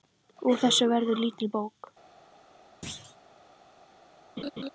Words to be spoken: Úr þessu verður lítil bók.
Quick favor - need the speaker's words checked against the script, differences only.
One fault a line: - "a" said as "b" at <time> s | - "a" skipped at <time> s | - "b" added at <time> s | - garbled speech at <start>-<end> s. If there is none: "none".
none